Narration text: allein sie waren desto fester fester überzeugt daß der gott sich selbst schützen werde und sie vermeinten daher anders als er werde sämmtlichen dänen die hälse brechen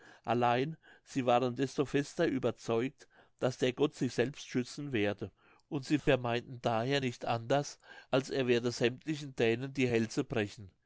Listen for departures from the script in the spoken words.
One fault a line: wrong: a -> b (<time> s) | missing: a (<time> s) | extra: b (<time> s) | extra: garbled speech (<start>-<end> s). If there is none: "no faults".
missing: fester (2.2 s)
extra: nicht (7.0 s)